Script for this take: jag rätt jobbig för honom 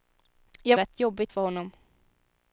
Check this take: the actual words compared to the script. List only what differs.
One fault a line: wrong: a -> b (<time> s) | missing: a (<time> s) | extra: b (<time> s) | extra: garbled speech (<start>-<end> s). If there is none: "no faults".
no faults